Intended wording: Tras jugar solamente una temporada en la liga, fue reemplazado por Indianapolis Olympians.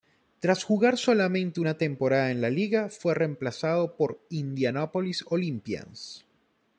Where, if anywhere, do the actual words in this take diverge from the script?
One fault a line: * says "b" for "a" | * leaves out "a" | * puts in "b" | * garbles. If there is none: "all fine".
all fine